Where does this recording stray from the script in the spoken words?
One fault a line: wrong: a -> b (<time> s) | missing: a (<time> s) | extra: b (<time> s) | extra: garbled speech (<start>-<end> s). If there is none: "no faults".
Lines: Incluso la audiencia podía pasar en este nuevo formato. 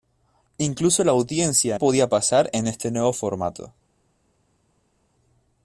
no faults